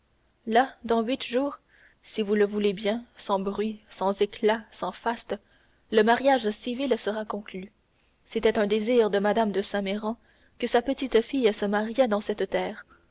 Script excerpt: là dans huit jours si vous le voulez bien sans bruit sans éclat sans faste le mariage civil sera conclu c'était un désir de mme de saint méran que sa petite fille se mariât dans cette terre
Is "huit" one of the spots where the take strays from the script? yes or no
no